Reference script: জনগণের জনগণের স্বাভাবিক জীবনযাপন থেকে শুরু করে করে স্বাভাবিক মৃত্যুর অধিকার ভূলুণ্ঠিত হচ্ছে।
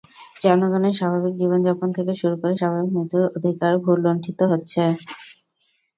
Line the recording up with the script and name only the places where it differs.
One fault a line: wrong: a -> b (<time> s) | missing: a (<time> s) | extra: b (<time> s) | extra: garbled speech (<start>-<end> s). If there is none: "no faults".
missing: জনগণের (1.0 s)
missing: করে (2.5 s)